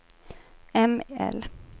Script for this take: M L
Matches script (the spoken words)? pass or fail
pass